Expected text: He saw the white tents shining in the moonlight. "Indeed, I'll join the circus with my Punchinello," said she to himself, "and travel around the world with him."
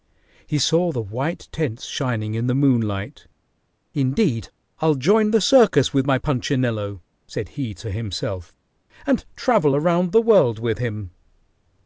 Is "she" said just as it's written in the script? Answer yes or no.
no